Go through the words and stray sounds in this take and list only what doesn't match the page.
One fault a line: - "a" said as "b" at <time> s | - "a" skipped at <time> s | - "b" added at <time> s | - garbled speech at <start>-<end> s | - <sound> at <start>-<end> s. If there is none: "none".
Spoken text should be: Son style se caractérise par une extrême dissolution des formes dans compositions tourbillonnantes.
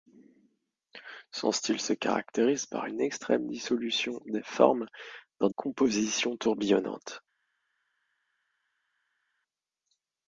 none